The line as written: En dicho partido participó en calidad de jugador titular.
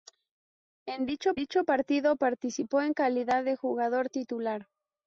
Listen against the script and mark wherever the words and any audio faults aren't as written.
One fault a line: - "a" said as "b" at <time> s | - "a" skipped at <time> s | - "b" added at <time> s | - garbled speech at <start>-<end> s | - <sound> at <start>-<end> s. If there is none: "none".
- "dicho" added at 1.3 s